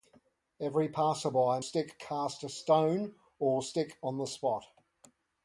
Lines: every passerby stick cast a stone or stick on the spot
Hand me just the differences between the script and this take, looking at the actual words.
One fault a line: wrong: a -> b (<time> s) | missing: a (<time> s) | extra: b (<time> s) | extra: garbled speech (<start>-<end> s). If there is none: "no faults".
no faults